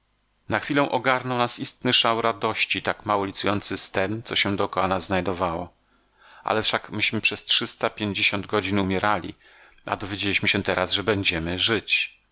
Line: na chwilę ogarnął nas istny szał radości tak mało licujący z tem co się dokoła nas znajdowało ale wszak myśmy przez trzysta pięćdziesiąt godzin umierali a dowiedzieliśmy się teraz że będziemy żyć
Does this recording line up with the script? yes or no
yes